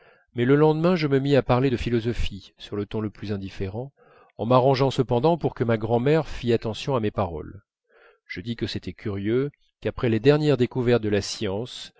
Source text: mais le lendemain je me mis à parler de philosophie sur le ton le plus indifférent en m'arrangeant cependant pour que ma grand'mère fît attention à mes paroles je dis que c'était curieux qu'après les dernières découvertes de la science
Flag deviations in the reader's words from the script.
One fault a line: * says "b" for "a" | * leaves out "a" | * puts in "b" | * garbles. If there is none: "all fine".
all fine